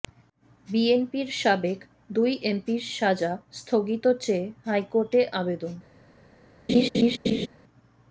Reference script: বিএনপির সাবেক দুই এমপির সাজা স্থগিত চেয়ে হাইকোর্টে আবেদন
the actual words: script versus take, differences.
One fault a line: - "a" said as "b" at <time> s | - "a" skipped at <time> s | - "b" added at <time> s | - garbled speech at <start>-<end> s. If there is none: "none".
none